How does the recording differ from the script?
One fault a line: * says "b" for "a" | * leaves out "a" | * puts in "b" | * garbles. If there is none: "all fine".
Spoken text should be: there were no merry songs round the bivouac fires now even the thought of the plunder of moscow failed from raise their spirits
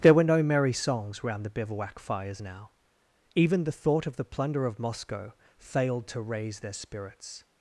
* says "to" for "from"